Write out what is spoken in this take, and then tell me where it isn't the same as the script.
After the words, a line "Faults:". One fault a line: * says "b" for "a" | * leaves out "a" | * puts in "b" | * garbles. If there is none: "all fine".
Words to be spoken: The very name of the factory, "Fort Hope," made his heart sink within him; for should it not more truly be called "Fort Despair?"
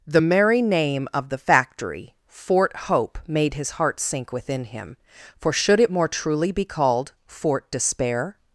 The merry name of the factory, "Fort Hope," made his heart sink within him; for should it more truly be called "Fort Despair?"
Faults:
* says "merry" for "very"
* leaves out "not"